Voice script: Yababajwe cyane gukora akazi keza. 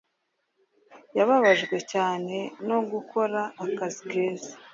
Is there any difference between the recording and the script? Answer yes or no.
yes